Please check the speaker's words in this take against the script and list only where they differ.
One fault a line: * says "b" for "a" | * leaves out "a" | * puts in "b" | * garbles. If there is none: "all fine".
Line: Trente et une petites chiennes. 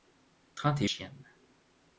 * leaves out "une petites"